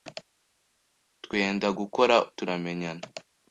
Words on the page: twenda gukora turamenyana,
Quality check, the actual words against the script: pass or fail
pass